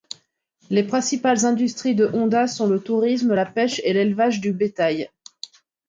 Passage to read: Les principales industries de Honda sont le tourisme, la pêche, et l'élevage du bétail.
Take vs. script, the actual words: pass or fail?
pass